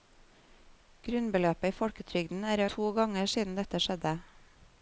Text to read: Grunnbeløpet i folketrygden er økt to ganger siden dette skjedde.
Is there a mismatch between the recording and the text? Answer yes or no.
yes